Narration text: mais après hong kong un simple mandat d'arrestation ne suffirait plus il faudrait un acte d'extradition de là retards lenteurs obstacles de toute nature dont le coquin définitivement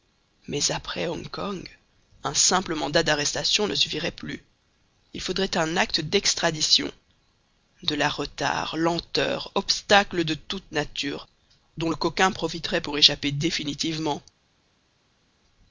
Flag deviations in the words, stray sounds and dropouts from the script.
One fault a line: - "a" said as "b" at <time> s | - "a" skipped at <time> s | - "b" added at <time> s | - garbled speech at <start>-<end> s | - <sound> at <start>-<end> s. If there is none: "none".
- "profiterait pour échapper" added at 12.3 s